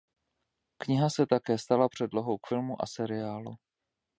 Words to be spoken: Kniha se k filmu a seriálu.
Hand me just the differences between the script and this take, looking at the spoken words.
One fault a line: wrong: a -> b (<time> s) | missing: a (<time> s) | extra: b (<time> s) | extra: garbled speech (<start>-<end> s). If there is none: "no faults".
extra: také stala předlohou (1.2 s)